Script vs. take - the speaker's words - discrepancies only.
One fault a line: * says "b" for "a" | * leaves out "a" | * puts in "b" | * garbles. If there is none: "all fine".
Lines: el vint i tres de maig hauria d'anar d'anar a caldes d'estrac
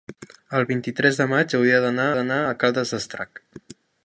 all fine